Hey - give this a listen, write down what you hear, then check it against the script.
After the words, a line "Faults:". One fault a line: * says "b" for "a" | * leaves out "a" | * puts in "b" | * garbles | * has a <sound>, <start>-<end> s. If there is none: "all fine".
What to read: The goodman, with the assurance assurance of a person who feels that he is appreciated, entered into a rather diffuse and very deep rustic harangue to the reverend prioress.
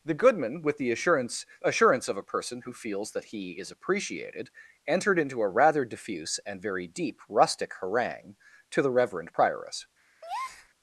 The goodman, with the assurance assurance of a person who feels that he is appreciated, entered into a rather diffuse and very deep rustic harangue to the reverend prioress.
Faults:
* has a breath, 10.2-10.7 s